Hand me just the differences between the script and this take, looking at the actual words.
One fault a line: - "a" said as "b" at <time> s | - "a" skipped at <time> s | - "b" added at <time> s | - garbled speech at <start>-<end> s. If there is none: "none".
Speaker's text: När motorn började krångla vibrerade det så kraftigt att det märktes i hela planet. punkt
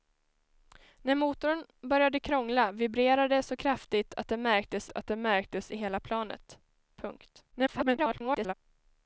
- "att det märktes" added at 4.9 s
- garbled speech at 7.5-8.5 s